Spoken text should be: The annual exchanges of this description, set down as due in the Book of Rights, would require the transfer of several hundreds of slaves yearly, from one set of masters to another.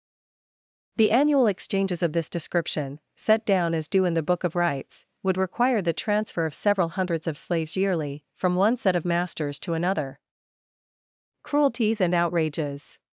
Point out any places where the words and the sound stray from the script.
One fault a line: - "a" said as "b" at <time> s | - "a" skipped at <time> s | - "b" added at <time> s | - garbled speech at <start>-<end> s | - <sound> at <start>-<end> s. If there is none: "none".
- "Cruelties and outrages" added at 11.4 s